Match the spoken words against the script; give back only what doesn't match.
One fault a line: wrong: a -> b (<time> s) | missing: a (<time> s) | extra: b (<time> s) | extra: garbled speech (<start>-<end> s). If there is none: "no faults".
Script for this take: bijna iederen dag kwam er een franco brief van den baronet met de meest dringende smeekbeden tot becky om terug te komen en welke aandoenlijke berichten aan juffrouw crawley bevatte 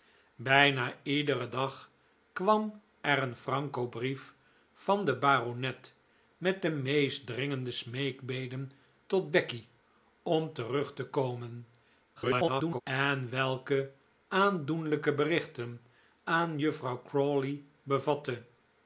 extra: garbled speech (12.1-12.8 s)